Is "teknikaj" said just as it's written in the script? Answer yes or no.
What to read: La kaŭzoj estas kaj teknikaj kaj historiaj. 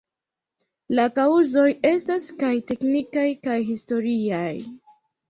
yes